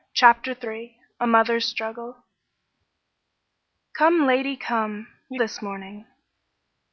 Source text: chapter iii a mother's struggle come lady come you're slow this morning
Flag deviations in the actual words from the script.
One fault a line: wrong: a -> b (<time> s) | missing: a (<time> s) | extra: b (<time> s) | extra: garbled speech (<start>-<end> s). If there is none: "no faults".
missing: slow (5.4 s)